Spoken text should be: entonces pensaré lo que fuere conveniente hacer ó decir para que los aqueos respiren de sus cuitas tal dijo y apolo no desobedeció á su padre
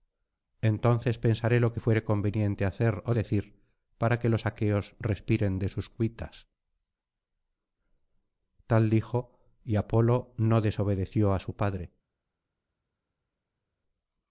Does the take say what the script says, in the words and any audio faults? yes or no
yes